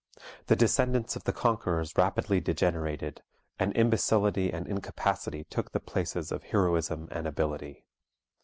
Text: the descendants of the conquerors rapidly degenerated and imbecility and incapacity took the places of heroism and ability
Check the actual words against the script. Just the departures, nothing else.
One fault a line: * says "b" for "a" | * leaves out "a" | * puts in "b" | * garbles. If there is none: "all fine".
all fine